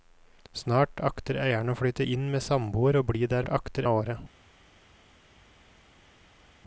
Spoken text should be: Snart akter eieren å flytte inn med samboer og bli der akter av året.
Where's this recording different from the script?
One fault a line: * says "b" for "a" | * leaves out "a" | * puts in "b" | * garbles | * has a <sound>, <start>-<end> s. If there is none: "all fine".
all fine